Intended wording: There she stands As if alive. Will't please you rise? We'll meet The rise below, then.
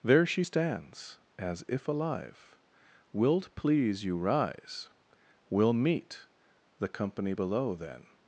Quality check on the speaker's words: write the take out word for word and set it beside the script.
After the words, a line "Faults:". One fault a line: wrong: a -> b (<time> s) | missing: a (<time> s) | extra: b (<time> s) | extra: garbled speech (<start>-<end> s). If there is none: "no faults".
There she stands As if alive. Will't please you rise? We'll meet The company below, then.
Faults:
wrong: rise -> company (6.9 s)